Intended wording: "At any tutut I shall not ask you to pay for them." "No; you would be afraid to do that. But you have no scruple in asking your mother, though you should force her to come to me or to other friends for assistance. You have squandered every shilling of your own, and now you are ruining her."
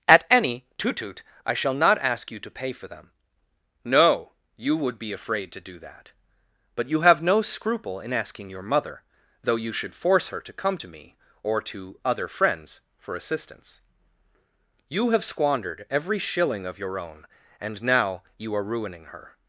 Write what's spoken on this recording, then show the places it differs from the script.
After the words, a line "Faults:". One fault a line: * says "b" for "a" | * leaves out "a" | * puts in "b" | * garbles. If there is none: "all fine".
"At any tutut I shall not ask you to pay for them." "No; you would be afraid to do that. But you have no scruple in asking your mother, though you should force her to come to me or to other friends for assistance. You have squandered every shilling of your own, and now you are ruining her."
Faults:
all fine